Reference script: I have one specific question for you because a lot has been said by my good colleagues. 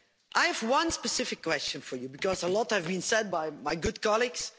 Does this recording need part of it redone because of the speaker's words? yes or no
no